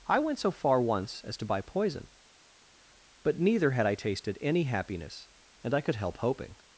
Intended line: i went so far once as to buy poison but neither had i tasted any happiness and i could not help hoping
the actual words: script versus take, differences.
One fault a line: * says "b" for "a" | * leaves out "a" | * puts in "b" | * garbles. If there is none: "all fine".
* leaves out "not"